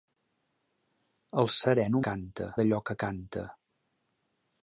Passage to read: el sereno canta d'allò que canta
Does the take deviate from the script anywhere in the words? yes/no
no